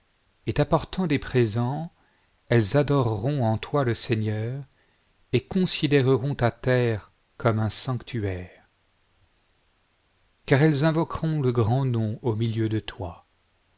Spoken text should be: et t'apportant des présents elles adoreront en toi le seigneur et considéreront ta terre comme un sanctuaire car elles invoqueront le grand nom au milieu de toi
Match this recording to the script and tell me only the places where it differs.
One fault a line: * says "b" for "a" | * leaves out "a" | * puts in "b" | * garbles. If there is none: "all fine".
all fine